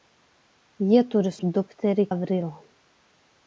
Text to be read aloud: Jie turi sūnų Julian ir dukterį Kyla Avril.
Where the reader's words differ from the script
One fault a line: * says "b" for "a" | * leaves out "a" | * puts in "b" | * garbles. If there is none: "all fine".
* leaves out "sūnų Julian"
* leaves out "Kyla"